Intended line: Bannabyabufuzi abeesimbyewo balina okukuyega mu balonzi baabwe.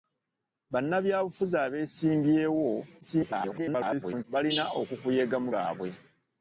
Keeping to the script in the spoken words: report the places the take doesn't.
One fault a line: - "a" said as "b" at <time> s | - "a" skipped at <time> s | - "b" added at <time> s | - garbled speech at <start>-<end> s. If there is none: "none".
- garbled speech at 3.0-4.2 s
- "balonzi" skipped at 5.5 s